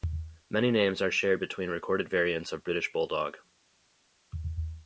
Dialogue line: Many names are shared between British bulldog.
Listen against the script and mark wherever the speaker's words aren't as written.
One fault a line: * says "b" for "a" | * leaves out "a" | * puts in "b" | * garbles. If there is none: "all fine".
* puts in "recorded variants of"